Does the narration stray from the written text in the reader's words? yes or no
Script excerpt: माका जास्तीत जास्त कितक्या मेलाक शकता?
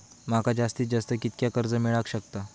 yes